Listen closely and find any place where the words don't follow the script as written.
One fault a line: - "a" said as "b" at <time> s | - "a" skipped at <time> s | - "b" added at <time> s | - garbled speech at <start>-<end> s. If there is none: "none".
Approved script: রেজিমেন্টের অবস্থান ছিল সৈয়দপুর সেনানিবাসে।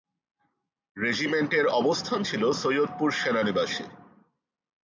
none